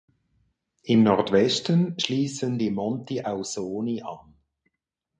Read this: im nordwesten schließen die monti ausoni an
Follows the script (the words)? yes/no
yes